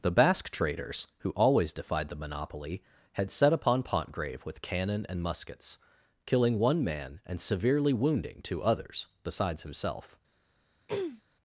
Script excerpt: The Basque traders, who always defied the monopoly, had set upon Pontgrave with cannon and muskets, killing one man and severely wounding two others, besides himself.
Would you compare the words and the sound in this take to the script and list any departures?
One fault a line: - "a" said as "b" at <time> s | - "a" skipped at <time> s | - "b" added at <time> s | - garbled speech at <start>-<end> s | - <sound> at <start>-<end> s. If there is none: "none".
- throat clearing at 10.9-11.2 s